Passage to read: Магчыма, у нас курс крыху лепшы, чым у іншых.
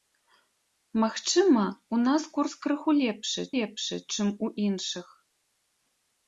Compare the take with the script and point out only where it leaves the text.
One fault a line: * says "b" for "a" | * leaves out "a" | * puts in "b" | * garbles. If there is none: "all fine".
* puts in "лепшы"